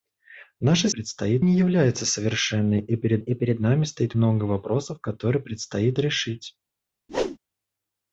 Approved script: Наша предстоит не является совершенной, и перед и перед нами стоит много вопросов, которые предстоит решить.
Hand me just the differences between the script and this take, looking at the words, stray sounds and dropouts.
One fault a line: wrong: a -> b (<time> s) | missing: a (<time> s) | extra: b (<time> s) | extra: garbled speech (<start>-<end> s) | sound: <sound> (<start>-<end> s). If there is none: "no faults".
sound: whoosh (7.1-7.4 s)